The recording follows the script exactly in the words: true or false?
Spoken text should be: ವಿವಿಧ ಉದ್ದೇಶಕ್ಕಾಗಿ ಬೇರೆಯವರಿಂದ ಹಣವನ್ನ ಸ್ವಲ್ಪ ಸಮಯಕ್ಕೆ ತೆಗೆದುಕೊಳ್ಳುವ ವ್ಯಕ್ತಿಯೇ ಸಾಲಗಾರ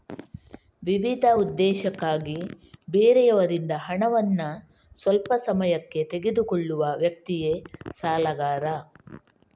true